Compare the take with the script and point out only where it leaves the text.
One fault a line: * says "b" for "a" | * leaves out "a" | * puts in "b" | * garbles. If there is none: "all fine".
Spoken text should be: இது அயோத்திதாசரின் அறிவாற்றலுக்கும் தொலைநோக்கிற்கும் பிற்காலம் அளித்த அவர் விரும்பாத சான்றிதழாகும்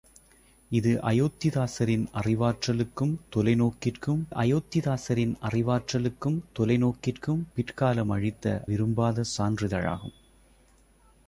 * puts in "அயோத்திதாசரின் அறிவாற்றலுக்கும் தொலைநோக்கிற்கும்"
* leaves out "அவர்"